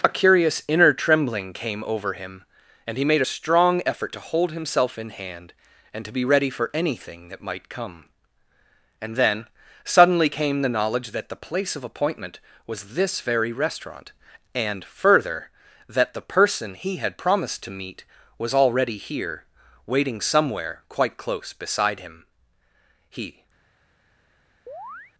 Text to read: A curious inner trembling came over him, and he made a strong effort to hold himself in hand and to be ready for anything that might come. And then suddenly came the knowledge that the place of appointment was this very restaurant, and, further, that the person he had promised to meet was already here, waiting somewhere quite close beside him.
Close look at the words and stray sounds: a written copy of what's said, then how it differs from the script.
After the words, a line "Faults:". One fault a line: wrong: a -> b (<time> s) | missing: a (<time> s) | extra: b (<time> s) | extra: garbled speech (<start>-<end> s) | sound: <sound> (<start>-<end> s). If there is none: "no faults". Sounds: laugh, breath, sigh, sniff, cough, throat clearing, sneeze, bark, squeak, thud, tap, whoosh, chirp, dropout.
A curious inner trembling came over him, and he made a strong effort to hold himself in hand and to be ready for anything that might come. And then suddenly came the knowledge that the place of appointment was this very restaurant, and, further, that the person he had promised to meet was already here, waiting somewhere quite close beside him. He
Faults:
extra: He (23.1 s)
sound: chirp (24.7-25.1 s)